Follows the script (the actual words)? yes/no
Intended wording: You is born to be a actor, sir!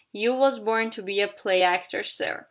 no